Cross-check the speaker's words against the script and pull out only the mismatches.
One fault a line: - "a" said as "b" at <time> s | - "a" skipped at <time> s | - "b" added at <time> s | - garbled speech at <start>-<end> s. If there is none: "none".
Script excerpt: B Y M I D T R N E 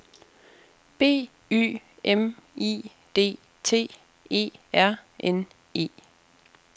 - "E" added at 4.3 s